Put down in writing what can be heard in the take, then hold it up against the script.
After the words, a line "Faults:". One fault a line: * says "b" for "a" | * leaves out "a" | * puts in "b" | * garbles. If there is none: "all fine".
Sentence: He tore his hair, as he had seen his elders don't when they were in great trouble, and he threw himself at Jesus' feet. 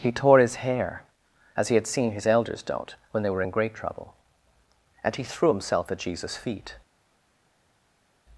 He tore his hair, as he had seen his elders don't when they were in great trouble, and he threw himself at Jesus' feet.
Faults:
all fine